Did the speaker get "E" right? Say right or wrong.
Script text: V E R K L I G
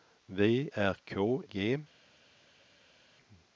wrong